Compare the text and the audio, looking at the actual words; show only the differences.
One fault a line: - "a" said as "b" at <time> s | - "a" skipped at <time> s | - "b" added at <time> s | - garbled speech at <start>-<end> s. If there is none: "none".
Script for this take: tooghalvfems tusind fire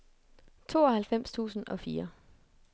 - "og" added at 1.7 s